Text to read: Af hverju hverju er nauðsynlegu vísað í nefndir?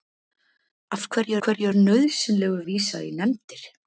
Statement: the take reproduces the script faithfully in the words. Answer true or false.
true